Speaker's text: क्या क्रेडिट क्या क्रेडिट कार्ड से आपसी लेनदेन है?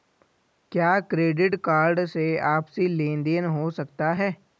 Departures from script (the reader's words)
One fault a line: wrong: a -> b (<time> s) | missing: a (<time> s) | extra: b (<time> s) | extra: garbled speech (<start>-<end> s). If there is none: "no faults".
missing: क्या क्रेडिट (1.6 s)
extra: हो सकता (3.5 s)